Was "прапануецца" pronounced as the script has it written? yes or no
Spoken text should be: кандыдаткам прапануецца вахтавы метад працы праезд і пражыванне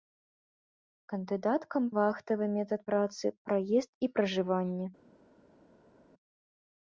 no